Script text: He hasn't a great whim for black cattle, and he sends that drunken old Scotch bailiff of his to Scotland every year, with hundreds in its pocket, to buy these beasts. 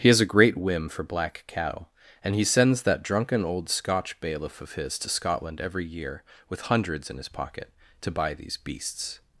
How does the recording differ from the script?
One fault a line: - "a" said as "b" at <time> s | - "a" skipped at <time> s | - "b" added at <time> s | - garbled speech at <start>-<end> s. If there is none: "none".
- "hasn't" said as "has" at 0.1 s
- "its" said as "his" at 7.2 s